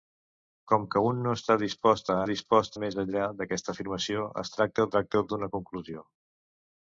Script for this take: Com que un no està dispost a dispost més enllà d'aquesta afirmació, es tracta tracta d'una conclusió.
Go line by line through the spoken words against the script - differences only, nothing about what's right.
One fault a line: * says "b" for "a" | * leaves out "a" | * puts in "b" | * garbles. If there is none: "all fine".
all fine